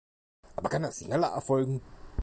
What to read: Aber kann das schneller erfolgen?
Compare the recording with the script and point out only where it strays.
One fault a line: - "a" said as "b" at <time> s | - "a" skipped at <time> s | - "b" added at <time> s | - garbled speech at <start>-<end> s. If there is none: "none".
none